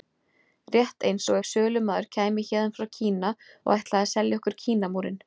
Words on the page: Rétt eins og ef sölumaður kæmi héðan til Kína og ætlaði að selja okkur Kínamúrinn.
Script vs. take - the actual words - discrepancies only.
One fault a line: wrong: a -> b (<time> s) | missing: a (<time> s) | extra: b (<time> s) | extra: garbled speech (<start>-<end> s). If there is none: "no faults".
wrong: til -> frá (2.8 s)